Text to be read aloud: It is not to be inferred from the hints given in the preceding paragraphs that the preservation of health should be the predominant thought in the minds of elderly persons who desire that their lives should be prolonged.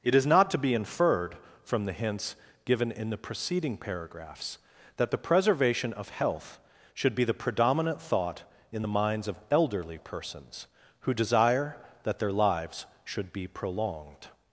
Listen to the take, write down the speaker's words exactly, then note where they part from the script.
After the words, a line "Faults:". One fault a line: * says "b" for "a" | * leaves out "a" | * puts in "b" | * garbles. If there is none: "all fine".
It is not to be inferred from the hints given in the preceding paragraphs that the preservation of health should be the predominant thought in the minds of elderly persons who desire that their lives should be prolonged.
Faults:
all fine